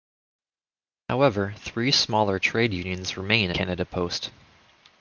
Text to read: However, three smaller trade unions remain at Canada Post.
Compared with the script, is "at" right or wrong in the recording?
wrong